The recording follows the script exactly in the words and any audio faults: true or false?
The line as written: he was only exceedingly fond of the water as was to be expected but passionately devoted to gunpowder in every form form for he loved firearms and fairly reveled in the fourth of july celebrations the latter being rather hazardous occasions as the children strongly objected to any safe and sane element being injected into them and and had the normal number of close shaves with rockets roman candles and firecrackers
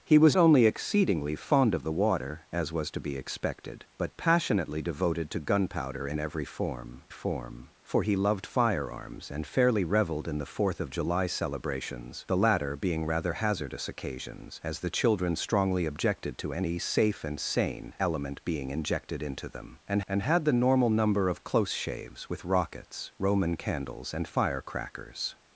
true